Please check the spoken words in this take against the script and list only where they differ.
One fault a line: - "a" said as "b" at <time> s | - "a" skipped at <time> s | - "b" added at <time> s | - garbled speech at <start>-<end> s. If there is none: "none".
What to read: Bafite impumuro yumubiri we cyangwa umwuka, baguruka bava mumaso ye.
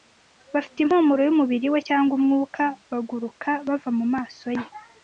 none